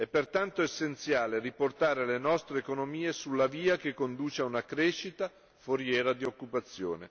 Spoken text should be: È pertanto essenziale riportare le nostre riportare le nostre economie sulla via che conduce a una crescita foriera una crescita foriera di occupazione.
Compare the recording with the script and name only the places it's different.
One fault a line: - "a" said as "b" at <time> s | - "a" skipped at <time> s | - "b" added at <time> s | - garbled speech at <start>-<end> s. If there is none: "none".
- "riportare le nostre" skipped at 2.6 s
- "una crescita foriera" skipped at 6.1 s